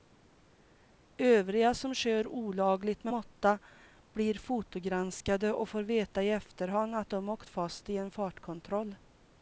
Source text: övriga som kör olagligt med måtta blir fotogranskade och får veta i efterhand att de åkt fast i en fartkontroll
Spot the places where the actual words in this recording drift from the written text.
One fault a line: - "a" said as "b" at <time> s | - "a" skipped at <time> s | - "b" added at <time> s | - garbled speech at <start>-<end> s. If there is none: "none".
none